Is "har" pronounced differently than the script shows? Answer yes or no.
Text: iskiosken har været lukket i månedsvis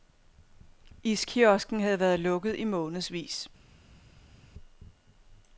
yes